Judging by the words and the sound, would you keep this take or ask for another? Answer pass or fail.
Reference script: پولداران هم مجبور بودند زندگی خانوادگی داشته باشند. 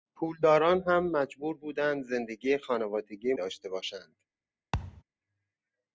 fail